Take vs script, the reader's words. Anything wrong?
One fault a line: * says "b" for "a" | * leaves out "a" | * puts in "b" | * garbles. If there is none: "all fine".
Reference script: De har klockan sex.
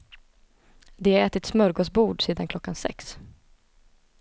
* puts in "ätit smörgåsbord sedan"